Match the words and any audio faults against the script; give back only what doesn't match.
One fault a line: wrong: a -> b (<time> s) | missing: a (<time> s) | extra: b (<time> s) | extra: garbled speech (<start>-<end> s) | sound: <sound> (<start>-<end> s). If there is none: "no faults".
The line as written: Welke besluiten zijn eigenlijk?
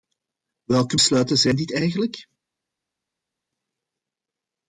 extra: dit (1.6 s)